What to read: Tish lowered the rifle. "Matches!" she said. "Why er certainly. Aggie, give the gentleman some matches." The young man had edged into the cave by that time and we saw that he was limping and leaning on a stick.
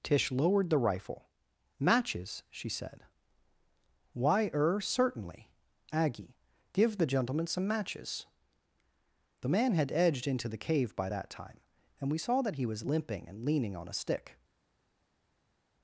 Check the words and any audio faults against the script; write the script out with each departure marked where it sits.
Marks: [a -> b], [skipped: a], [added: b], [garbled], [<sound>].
Tish lowered the rifle. "Matches!" she said. "Why er certainly. Aggie, give the gentleman some matches." The [skipped: young] man had edged into the cave by that time and we saw that he was limping and leaning on a stick.